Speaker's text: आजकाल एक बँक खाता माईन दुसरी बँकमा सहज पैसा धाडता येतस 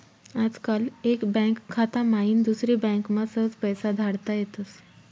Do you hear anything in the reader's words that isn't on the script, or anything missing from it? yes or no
no